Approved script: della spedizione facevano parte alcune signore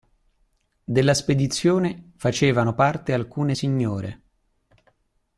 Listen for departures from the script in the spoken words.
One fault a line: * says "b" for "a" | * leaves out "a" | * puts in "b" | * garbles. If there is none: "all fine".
all fine